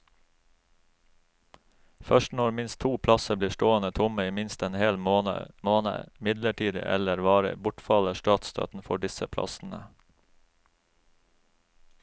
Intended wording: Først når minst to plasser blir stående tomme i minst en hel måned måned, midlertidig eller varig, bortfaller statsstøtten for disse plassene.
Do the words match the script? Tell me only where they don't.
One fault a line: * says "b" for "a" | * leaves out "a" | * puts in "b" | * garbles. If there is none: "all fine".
all fine